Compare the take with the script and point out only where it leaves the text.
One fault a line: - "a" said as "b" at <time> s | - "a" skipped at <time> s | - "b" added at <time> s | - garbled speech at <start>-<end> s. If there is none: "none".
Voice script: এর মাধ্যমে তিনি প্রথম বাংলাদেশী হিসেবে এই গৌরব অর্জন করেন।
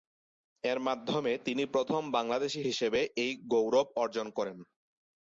none